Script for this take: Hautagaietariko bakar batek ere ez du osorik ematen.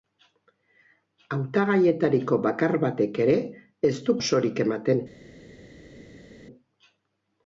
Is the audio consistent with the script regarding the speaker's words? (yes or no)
yes